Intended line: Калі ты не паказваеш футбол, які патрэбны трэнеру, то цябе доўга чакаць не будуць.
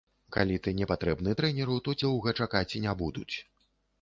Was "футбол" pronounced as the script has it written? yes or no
no